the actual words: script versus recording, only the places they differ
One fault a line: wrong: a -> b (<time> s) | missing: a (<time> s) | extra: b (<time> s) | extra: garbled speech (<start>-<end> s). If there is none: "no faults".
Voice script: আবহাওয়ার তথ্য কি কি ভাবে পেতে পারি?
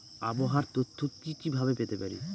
no faults